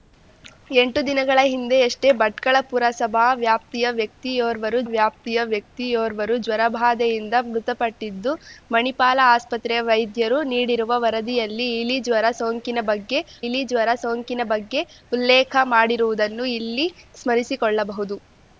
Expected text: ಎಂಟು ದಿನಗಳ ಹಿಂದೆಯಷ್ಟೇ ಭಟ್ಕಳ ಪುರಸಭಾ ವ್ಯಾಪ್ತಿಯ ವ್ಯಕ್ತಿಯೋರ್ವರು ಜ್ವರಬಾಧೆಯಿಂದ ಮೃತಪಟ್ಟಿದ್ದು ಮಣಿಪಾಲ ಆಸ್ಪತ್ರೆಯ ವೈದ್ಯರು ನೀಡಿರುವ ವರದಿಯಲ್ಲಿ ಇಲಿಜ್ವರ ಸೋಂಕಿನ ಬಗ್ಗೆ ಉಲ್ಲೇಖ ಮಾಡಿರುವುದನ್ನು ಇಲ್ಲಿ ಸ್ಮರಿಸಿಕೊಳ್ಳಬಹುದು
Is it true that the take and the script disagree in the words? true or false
true